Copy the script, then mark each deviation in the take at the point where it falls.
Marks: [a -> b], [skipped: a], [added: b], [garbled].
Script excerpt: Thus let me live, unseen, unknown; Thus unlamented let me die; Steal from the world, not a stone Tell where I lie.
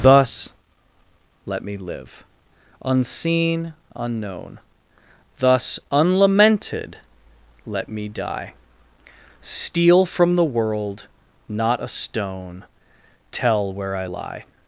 Thus let me live, unseen, unknown; Thus unlamented let me die; Steal from the world, not a stone Tell where I lie.